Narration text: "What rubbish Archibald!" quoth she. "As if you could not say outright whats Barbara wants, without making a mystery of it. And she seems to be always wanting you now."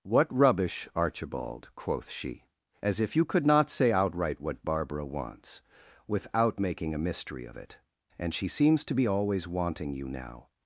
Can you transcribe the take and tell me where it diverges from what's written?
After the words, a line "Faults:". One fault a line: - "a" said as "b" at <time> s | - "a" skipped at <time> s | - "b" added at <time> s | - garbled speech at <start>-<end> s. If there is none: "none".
"What rubbish Archibald!" quoth she. "As if you could not say outright what Barbara wants, without making a mystery of it. And she seems to be always wanting you now."
Faults:
- "whats" said as "what" at 4.4 s